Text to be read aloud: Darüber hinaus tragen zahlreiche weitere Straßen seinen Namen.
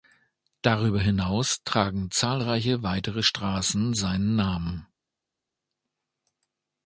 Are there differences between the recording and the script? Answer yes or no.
no